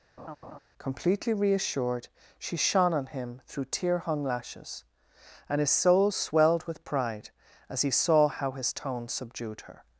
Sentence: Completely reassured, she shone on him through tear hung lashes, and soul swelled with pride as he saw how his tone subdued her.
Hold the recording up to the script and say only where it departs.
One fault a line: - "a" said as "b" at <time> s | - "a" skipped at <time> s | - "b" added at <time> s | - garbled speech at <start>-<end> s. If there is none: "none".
- "his" added at 5.6 s